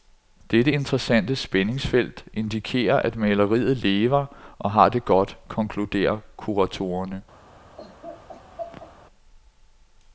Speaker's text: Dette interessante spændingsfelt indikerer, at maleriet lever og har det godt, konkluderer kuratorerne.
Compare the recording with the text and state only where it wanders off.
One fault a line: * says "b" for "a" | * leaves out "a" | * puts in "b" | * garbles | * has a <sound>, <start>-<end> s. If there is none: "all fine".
* has a laugh, 7.8-8.9 s